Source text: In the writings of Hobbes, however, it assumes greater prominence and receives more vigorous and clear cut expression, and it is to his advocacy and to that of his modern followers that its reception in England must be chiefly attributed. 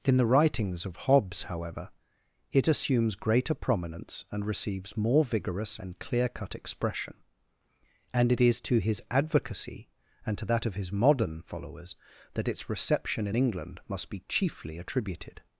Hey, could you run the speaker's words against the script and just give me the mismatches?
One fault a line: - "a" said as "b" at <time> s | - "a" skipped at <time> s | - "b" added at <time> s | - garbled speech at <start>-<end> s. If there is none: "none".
none